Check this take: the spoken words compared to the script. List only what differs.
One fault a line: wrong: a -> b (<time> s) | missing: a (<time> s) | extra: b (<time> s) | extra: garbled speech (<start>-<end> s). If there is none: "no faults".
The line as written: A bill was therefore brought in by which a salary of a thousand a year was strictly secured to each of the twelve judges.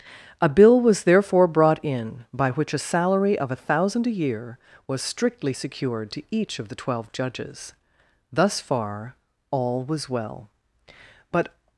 extra: Thus far all was well But (8.3 s)